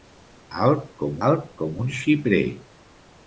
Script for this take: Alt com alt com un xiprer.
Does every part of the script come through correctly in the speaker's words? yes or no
yes